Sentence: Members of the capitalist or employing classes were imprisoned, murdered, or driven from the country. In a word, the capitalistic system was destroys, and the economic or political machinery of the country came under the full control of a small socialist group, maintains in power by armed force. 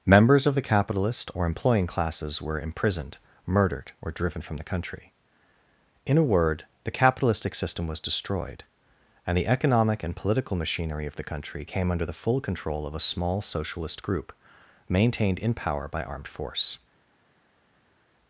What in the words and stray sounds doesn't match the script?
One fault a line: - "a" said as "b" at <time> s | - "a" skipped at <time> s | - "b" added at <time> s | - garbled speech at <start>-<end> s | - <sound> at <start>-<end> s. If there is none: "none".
- "destroys" said as "destroyed" at 8.0 s
- "or" said as "and" at 10.0 s
- "maintains" said as "maintained" at 14.9 s